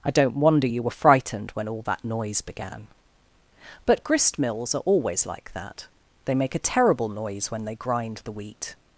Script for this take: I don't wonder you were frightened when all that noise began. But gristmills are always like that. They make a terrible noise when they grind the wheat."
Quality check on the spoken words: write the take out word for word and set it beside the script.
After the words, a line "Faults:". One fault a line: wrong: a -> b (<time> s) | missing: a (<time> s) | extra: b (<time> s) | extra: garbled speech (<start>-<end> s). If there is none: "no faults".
I don't wonder you were frightened when all that noise began. But gristmills are always like that. They make a terrible noise when they grind the wheat."
Faults:
no faults